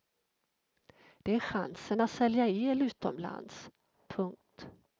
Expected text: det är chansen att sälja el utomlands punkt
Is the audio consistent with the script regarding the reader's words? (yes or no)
yes